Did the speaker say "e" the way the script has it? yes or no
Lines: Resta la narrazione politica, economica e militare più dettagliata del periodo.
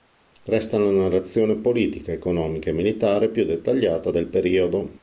yes